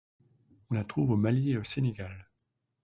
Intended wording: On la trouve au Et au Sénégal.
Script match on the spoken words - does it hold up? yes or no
no